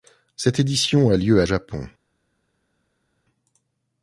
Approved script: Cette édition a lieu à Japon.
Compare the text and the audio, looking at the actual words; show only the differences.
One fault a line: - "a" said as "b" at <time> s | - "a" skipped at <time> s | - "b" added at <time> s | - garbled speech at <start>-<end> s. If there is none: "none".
none